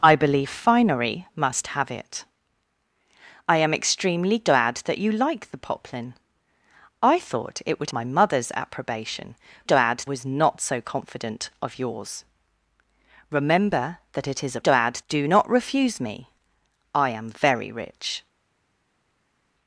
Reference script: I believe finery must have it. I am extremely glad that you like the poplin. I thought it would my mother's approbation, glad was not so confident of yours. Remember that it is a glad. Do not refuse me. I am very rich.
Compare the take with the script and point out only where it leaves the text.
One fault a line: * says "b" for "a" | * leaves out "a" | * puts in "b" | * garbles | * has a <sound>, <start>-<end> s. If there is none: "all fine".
all fine